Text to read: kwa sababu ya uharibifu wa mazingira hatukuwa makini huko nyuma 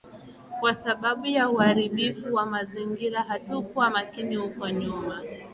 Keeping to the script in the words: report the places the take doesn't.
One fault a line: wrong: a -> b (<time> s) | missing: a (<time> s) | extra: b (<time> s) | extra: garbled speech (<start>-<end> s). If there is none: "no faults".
no faults